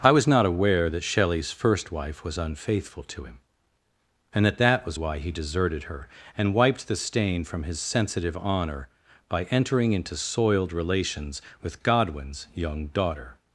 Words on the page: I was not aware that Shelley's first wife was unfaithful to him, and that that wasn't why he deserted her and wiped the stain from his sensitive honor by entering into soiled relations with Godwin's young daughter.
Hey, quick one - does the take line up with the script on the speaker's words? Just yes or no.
no